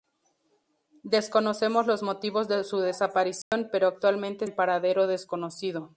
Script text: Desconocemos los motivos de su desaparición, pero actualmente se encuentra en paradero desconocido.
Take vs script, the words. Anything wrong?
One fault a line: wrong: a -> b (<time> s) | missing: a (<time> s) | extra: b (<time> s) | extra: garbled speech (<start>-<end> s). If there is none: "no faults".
missing: se encuentra (4.5 s)